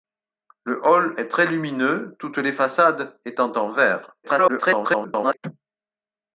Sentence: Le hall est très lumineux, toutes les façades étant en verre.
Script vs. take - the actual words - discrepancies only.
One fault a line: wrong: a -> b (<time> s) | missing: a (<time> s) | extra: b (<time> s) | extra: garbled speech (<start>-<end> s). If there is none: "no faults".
extra: garbled speech (4.2-5.4 s)